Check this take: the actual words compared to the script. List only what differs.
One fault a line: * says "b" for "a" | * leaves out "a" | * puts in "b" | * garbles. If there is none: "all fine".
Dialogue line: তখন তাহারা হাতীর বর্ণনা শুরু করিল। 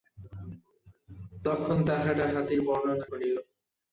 * leaves out "শুরু"